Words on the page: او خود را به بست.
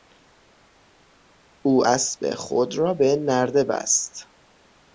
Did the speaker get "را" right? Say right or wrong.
right